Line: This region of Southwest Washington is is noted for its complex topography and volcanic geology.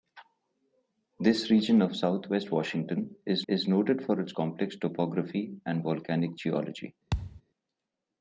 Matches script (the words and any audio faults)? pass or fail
fail